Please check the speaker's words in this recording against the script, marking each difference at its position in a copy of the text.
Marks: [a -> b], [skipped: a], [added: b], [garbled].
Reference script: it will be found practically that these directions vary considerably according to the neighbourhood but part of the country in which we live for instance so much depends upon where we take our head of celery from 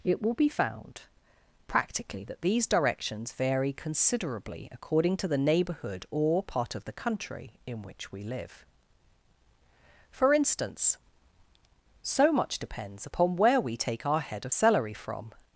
it will be found practically that these directions vary considerably according to the neighbourhood [but -> or] part of the country in which we live for instance so much depends upon where we take our head of celery from